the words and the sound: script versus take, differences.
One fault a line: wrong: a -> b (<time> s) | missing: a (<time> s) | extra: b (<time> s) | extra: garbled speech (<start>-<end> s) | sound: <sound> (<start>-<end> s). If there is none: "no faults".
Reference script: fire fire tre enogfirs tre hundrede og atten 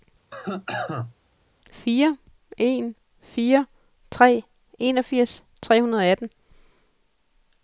sound: cough (0.3-1.1 s)
extra: en (2.6 s)